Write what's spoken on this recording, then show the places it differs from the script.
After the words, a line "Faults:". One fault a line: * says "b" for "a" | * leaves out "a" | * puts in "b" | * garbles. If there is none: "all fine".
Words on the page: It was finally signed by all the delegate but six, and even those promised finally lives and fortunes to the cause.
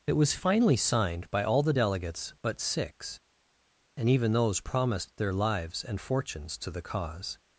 It was finally signed by all the delegates but six, and even those promised their lives and fortunes to the cause.
Faults:
* says "delegates" for "delegate"
* says "their" for "finally"